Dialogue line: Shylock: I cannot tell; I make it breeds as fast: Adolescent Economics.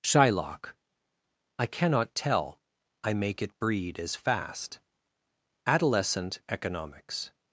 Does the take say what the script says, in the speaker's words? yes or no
no